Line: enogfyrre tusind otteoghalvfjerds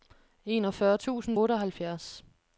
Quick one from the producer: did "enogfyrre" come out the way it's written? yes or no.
yes